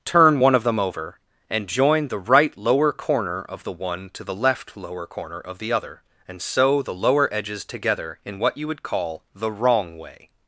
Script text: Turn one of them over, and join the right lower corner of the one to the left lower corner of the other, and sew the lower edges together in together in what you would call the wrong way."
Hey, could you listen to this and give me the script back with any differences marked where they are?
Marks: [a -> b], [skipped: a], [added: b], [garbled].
Turn one of them over, and join the right lower corner of the one to the left lower corner of the other, and sew the lower edges together in [skipped: together in] what you would call the wrong way."